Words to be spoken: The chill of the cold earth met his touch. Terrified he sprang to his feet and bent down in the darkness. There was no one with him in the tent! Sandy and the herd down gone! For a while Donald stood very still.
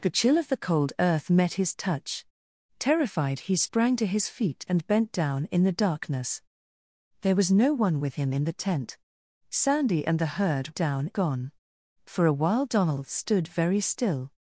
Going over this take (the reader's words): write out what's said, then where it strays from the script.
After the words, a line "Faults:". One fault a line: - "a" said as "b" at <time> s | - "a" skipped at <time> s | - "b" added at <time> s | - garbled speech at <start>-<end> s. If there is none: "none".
The chill of the cold earth met his touch. Terrified he sprang to his feet and bent down in the darkness. There was no one with him in the tent! Sandy and the herd down gone! For a while Donald stood very still.
Faults:
none